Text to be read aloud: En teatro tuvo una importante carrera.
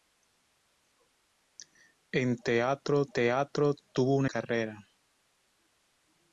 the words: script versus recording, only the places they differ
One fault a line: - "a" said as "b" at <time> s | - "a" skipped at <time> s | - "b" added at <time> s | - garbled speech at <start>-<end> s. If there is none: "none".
- "teatro" added at 3.1 s
- "importante" skipped at 4.3 s